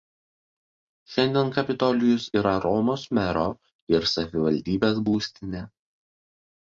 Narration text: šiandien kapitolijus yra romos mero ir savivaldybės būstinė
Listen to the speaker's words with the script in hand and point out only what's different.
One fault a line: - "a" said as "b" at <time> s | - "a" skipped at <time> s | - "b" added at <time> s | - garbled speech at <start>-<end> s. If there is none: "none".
none